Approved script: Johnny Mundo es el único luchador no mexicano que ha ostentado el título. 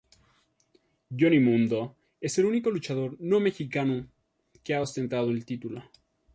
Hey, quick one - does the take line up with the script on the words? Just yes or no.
yes